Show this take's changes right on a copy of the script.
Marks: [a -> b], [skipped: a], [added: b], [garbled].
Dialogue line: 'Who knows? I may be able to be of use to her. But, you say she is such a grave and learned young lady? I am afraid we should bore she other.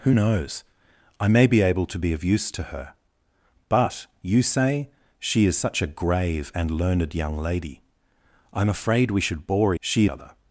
'Who knows? I may be able to be of use to her. But, you say she is such a grave and learned young lady? I am afraid we should bore she other.